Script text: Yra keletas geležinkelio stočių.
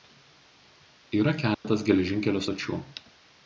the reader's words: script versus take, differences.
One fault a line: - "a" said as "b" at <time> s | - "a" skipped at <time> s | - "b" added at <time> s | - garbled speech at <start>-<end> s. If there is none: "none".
none